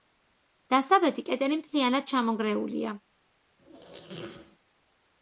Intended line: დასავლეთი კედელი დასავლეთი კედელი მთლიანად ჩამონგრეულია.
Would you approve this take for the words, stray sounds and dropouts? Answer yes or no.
no